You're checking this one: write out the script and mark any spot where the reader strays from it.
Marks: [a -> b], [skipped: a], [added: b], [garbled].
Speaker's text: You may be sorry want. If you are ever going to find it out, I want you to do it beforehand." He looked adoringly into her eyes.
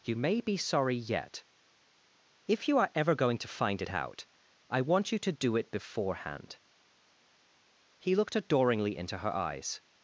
You may be sorry [want. -> yet] If you are ever going to find it out, I want you to do it beforehand." He looked adoringly into her eyes.